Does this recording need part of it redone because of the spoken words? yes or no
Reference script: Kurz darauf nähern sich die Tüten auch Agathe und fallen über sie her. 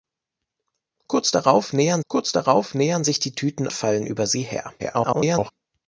yes